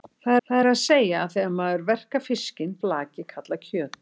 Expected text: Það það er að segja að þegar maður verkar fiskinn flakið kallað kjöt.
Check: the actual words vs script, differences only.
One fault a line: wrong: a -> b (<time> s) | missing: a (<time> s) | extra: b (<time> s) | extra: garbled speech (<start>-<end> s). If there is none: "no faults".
no faults